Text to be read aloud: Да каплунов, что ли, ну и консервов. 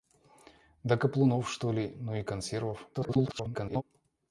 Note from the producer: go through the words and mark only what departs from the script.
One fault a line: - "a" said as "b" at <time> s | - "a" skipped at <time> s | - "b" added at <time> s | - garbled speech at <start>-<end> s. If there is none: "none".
- garbled speech at 2.9-3.8 s